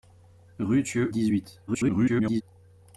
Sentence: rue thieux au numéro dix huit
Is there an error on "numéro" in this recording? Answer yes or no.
yes